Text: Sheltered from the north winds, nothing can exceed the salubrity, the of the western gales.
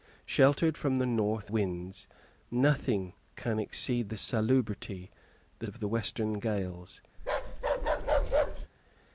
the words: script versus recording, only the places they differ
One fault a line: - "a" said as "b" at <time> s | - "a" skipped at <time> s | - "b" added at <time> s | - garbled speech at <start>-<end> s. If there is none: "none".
none